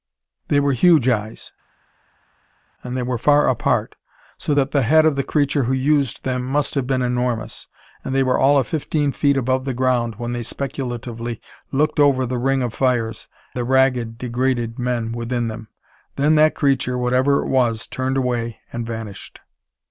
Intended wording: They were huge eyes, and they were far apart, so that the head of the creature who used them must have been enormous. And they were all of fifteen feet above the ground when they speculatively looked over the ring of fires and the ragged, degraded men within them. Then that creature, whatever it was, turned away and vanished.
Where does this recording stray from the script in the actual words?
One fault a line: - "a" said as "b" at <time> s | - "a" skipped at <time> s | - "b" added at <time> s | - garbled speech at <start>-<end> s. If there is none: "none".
- "and" skipped at 13.3 s